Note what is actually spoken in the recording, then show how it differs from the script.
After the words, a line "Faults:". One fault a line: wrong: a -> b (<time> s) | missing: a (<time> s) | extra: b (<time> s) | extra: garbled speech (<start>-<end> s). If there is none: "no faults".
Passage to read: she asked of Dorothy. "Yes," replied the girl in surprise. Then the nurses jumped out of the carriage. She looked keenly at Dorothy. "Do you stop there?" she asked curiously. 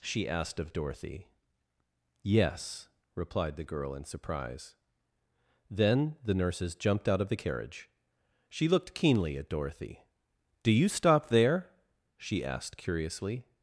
she asked of Dorothy. "Yes," replied the girl in surprise. Then the nurses jumped out of the carriage. She looked keenly at Dorothy. "Do you stop there?" she asked curiously.
Faults:
no faults